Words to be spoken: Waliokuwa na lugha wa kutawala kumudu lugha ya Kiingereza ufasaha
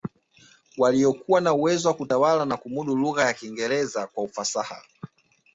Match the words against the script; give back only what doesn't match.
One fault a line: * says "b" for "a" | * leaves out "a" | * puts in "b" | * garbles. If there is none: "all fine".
* says "uwezo" for "lugha"
* puts in "na"
* puts in "kwa"